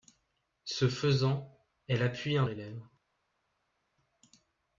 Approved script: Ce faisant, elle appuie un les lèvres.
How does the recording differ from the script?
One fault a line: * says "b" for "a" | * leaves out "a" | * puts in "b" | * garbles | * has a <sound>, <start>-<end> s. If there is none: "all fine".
all fine